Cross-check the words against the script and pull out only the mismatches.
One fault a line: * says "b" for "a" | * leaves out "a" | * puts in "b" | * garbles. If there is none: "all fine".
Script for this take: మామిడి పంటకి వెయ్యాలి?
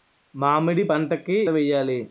all fine